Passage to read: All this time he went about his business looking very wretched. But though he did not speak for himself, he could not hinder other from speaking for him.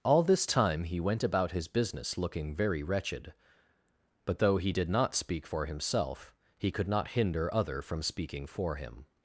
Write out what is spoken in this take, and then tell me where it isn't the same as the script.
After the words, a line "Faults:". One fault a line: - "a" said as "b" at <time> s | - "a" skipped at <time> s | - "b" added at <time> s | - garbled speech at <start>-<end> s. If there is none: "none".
All this time he went about his business looking very wretched. But though he did not speak for himself, he could not hinder other from speaking for him.
Faults:
none